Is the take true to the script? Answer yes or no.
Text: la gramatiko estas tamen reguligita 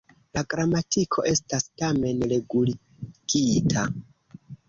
yes